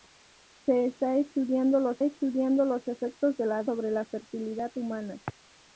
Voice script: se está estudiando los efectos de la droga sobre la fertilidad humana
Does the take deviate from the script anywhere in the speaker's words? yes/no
yes